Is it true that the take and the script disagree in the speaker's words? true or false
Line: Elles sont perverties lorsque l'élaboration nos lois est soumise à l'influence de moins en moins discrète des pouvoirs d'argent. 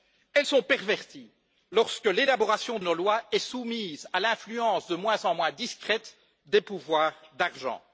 false